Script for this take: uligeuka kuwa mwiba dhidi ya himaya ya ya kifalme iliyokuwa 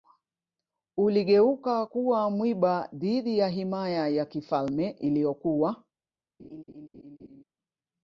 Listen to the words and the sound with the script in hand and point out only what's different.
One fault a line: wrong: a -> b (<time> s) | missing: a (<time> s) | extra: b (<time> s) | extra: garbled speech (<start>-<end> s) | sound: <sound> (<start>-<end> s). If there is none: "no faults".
missing: ya (4.2 s)
sound: laugh (6.4-7.4 s)